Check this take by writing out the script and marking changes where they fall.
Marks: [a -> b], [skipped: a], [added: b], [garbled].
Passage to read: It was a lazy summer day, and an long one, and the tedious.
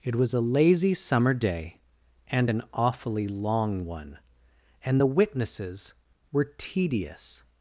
It was a lazy summer day, and an [added: awfully] long one, and the [added: witnesses were] tedious.